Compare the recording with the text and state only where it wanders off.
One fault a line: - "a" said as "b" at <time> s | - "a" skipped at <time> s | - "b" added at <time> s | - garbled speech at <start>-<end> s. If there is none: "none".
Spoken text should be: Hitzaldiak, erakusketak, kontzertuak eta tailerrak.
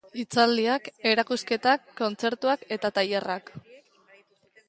none